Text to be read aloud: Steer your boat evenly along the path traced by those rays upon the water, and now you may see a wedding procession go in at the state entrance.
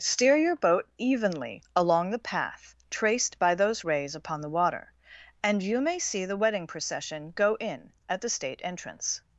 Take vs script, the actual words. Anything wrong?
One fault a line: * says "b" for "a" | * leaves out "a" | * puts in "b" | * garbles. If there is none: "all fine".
* leaves out "now"
* says "the" for "a"